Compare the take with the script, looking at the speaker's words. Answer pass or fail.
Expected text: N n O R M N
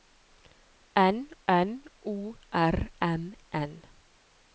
pass